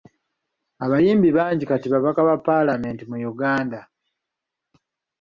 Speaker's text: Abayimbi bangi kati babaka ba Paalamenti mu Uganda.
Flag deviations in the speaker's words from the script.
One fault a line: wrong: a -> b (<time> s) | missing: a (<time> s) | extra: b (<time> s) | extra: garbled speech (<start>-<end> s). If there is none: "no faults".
no faults